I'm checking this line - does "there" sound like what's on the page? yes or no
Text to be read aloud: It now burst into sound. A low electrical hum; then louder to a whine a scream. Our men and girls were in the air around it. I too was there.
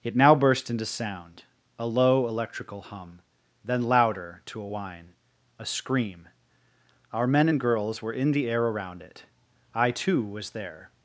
yes